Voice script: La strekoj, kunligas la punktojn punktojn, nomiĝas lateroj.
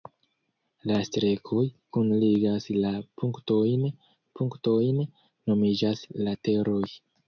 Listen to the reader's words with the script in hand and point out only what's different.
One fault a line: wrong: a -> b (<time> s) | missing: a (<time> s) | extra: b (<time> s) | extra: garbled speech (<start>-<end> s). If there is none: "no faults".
no faults